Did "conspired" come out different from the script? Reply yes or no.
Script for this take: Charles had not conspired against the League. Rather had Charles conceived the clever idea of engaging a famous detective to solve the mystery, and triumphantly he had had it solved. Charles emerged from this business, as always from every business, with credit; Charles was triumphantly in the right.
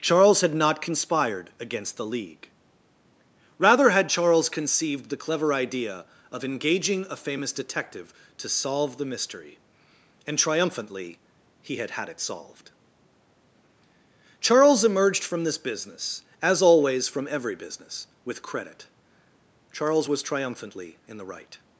no